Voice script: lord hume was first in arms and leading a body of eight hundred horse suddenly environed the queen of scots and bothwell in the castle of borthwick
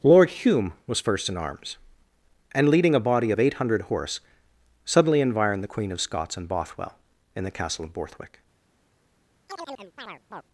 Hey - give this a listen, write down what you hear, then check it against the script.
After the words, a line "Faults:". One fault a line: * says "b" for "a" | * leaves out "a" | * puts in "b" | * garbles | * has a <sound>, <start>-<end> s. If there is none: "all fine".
lord hume was first in arms and leading a body of eight hundred horse suddenly environed the queen of scots and bothwell in the castle of borthwick
Faults:
* has a chirp, 9.5-10.4 s